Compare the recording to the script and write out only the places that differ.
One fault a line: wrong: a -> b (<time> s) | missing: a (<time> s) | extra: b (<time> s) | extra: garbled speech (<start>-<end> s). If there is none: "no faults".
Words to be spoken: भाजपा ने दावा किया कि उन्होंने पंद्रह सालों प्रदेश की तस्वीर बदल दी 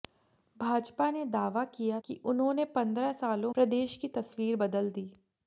no faults